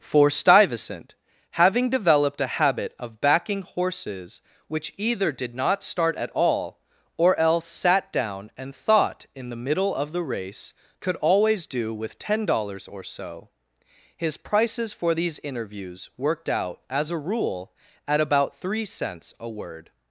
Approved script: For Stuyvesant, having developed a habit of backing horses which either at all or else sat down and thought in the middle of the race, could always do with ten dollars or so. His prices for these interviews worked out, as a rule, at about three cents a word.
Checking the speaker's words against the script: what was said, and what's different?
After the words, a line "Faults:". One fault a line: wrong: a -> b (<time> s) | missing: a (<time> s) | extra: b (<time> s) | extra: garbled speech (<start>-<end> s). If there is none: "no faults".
For Stuyvesant, having developed a habit of backing horses which either did not start at all or else sat down and thought in the middle of the race, could always do with ten dollars or so. His prices for these interviews worked out, as a rule, at about three cents a word.
Faults:
extra: did not start (5.3 s)